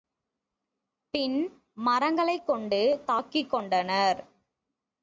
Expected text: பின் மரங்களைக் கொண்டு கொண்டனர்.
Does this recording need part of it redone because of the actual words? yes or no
yes